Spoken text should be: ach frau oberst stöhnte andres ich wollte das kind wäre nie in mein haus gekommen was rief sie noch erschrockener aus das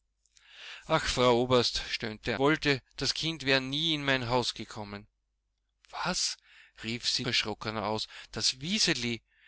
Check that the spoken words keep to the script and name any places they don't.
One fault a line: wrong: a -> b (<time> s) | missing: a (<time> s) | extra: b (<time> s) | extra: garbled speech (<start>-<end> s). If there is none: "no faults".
missing: andres ich (2.4 s)
missing: noch (7.3 s)